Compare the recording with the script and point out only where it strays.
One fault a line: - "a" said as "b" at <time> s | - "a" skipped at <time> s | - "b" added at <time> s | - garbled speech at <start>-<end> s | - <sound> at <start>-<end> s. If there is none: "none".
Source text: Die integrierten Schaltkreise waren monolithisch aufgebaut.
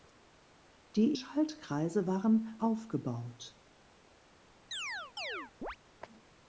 - "integrierten" skipped at 1.1 s
- "monolithisch" skipped at 2.6 s
- chirp at 4.7-5.8 s